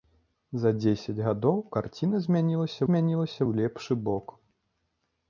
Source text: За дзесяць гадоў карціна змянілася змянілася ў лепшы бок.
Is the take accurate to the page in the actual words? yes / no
yes